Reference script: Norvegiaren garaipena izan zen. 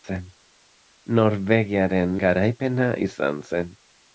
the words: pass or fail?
pass